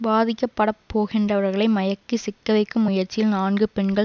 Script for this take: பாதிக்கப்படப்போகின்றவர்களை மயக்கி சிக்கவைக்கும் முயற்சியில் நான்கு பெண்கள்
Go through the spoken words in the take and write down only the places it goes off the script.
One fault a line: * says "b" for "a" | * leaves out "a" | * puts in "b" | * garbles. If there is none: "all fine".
all fine